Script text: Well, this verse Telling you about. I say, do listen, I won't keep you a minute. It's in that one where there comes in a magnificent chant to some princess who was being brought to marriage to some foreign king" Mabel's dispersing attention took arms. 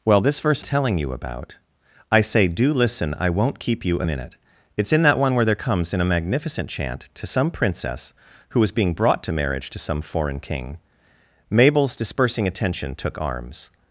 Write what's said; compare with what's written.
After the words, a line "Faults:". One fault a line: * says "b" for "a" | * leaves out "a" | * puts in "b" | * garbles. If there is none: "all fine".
Well, this verse Telling you about. I say, do listen, I won't keep you a minute. It's in that one where there comes in a magnificent chant to some princess who was being brought to marriage to some foreign king" Mabel's dispersing attention took arms.
Faults:
all fine